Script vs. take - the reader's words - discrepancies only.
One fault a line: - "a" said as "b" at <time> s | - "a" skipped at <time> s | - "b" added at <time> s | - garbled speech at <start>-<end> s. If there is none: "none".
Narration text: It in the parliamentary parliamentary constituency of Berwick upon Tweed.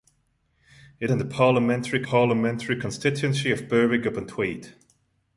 none